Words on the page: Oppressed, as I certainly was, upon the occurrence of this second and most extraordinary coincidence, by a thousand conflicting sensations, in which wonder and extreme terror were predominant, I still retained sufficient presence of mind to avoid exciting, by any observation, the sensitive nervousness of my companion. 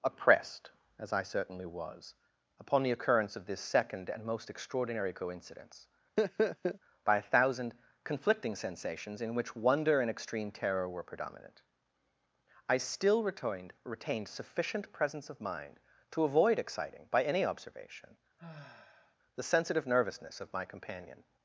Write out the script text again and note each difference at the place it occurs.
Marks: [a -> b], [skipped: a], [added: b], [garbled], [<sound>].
Oppressed, as I certainly was, upon the occurrence of this second and most extraordinary coincidence, [laugh] by a thousand conflicting sensations, in which wonder and extreme terror were predominant, I still retained [added: retained] sufficient presence of mind to avoid exciting, by any observation, [sigh] the sensitive nervousness of my companion.